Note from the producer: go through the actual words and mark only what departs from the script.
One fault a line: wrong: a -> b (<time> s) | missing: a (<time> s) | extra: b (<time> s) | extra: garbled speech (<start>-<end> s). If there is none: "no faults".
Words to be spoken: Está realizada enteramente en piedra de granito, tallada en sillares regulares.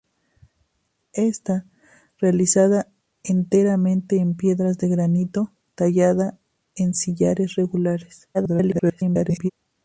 extra: garbled speech (8.3-9.5 s)